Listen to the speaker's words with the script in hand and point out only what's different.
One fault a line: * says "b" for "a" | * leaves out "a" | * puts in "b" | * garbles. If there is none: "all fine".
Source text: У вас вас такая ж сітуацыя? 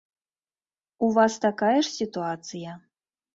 * leaves out "вас"